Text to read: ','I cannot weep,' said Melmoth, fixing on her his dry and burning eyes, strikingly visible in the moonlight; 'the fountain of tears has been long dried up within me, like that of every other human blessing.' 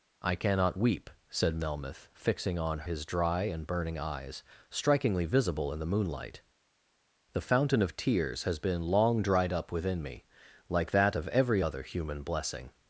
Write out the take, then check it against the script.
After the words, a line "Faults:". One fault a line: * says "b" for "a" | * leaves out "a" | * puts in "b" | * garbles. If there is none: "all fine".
','I cannot weep,' said Melmoth, fixing on his dry and burning eyes, strikingly visible in the moonlight; 'the fountain of tears has been long dried up within me, like that of every other human blessing.'
Faults:
* leaves out "her"